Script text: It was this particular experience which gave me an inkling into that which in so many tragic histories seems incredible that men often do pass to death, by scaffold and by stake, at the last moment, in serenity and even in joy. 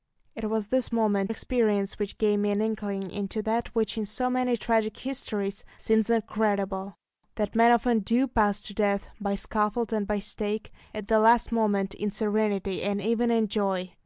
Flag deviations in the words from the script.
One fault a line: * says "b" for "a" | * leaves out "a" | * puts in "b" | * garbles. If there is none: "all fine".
* says "moment" for "particular"